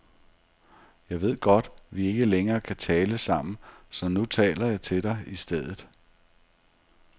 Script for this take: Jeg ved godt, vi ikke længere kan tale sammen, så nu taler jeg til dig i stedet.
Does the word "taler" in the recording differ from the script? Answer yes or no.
no